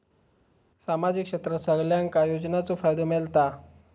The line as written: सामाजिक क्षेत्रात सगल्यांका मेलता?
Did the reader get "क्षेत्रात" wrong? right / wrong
right